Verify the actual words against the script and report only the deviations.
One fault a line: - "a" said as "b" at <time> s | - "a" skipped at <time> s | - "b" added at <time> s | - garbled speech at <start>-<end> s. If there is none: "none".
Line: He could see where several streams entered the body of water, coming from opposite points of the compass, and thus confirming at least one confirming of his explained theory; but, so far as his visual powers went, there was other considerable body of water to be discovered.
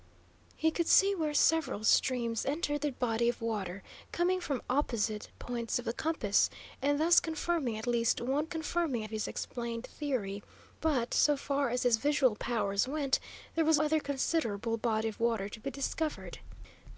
none